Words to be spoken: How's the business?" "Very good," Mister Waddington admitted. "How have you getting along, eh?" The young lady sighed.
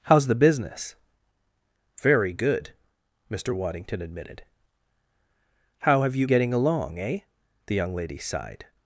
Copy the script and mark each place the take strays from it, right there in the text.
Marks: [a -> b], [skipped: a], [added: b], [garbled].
How's the business?" "Very good," Mister Waddington admitted. "How have you getting along, eh?" The young lady sighed.